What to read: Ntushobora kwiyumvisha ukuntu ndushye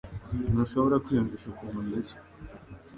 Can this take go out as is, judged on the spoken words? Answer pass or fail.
pass